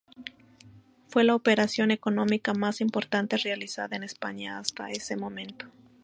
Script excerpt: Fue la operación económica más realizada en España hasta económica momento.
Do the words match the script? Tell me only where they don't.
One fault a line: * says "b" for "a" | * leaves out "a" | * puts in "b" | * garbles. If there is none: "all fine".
* puts in "importante"
* says "ese" for "económica"